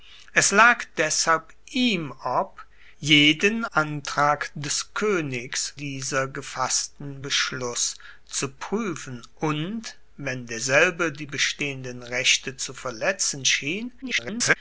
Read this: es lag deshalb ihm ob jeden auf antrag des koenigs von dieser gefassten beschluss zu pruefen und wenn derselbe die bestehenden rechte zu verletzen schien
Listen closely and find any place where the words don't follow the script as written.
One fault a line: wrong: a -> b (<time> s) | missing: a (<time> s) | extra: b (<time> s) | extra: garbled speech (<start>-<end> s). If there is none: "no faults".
missing: auf (3.6 s)
missing: von (5.7 s)
extra: garbled speech (14.0-14.6 s)